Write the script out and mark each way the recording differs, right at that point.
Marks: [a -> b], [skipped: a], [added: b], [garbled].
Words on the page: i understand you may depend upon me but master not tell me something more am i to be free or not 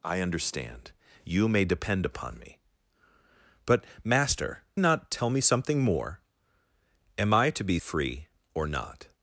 i understand you may depend upon me but master not tell me something more am i to be free or not